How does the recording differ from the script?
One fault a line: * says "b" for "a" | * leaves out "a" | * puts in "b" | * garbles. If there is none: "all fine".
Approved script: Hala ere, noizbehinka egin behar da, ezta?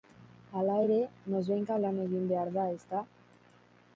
* puts in "lan"